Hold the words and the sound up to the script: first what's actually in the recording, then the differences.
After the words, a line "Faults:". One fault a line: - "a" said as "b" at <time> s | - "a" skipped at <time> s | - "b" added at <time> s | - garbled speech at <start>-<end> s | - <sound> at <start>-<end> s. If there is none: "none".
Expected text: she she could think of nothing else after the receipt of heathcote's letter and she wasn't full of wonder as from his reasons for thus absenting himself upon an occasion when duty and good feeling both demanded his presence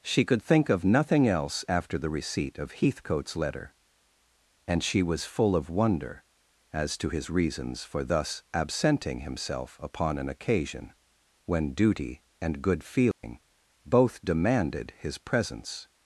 she could think of nothing else after the receipt of heathcote's letter and she was full of wonder as to his reasons for thus absenting himself upon an occasion when duty and good feeling both demanded his presence
Faults:
- "she" skipped at 0.2 s
- "wasn't" said as "was" at 5.0 s
- "from" said as "to" at 7.0 s
- dropout at 13.1-13.2 s